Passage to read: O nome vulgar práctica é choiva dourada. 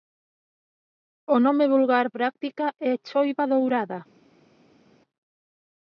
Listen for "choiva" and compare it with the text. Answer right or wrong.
right